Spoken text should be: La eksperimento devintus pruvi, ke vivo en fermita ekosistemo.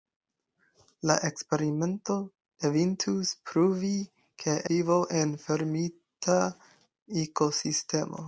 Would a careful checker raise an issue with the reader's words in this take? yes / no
no